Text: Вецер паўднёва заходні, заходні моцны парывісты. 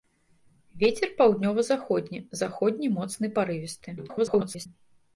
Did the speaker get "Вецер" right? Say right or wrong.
right